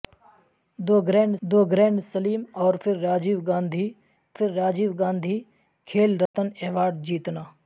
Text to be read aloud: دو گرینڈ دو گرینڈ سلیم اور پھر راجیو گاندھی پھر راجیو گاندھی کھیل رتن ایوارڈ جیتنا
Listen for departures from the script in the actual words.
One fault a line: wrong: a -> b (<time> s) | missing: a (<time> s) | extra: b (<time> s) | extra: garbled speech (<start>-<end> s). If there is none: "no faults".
no faults